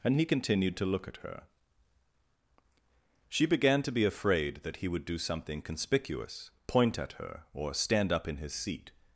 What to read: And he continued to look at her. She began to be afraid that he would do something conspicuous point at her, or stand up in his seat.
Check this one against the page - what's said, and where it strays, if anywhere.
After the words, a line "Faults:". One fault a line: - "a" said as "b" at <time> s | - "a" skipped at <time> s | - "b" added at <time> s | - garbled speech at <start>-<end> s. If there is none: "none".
And he continued to look at her. She began to be afraid that he would do something conspicuous point at her, or stand up in his seat.
Faults:
none